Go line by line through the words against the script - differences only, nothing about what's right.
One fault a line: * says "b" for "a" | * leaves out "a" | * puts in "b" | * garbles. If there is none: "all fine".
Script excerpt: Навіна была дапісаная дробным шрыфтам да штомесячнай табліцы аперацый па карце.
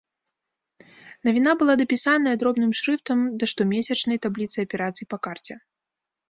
all fine